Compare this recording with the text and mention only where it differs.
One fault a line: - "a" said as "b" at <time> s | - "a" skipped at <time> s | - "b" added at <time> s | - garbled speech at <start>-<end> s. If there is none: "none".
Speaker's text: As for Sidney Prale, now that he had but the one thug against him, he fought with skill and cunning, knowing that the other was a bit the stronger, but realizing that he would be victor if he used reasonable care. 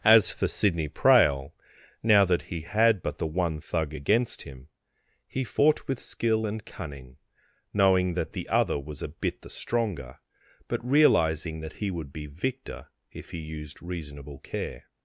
none